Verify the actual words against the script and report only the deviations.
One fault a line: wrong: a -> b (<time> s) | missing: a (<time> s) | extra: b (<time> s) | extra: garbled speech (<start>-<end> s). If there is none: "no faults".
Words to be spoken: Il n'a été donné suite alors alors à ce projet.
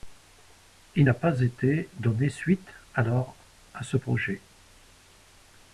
extra: pas (1.1 s)
missing: alors (3.3 s)